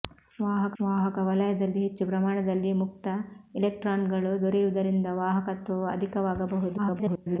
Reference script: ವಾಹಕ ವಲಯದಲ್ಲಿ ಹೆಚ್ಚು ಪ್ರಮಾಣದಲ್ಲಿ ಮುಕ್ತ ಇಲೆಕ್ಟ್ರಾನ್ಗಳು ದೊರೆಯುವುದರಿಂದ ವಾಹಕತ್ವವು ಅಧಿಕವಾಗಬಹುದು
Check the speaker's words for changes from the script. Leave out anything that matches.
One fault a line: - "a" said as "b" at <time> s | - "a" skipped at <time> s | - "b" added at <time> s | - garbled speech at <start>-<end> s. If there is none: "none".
- "ವಾಹಕ" added at 0.8 s
- garbled speech at 6.8-7.4 s